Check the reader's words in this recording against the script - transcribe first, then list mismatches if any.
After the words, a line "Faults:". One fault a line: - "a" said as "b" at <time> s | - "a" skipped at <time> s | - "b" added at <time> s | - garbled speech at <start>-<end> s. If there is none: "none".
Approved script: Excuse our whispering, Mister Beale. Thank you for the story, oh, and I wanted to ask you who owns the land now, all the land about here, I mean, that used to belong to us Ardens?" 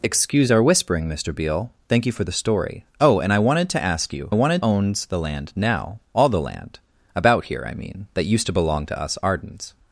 Excuse our whispering, Mister Beale. Thank you for the story, oh, and I wanted to ask you wanted owns the land now, all the land about here, I mean, that used to belong to us Ardens?"
Faults:
- "who" said as "wanted" at 4.3 s